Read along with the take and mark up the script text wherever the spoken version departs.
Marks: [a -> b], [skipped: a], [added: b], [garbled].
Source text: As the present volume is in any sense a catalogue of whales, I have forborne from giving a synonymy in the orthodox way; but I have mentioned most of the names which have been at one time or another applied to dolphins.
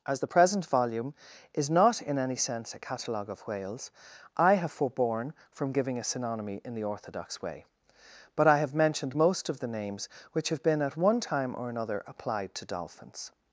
As the present volume is [added: not] in any sense a catalogue of whales, I have forborne from giving a synonymy in the orthodox way; but I have mentioned most of the names which have been at one time or another applied to dolphins.